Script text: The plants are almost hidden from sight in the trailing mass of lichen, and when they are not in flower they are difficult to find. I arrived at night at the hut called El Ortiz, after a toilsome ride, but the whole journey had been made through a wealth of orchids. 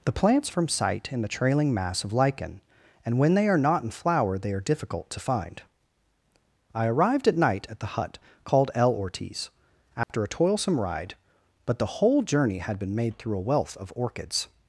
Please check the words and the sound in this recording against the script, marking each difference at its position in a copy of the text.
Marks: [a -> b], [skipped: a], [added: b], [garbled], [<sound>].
The plants [skipped: are almost hidden] from sight in the trailing mass of lichen, and when they are not in flower they are difficult to find. I arrived at night at the hut called El Ortiz, after [dropout] a toilsome ride, but the whole journey had been made through a wealth of orchids.